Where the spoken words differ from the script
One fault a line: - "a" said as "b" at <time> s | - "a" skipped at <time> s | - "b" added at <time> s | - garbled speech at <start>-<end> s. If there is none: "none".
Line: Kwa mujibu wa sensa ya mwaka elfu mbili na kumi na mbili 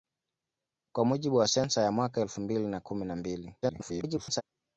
- garbled speech at 3.6-4.4 s